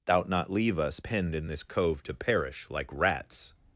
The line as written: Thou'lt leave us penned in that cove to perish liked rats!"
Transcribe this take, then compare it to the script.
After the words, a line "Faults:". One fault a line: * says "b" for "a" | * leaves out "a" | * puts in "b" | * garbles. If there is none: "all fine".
Thou'lt not leave us penned in this cove to perish like rats!"
Faults:
* puts in "not"
* says "this" for "that"
* says "like" for "liked"